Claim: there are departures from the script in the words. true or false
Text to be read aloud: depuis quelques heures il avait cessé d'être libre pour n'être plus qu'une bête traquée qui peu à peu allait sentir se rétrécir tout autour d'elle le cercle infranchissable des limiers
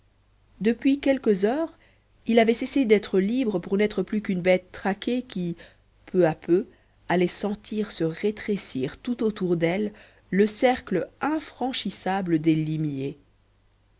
false